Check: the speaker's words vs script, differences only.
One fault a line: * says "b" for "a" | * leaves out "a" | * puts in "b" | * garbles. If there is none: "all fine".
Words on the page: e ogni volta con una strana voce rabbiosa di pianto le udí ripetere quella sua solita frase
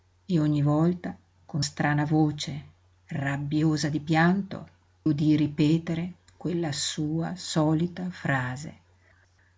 * leaves out "una"
* leaves out "le"